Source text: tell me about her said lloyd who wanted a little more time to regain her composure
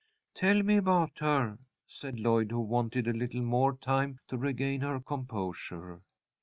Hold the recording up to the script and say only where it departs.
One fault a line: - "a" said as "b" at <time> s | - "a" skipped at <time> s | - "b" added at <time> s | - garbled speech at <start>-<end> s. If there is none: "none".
none